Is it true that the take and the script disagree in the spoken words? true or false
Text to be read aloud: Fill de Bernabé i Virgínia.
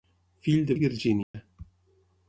true